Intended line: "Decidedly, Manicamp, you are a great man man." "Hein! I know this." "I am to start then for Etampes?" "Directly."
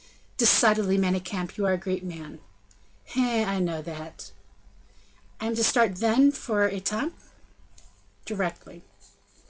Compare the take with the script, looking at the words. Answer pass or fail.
fail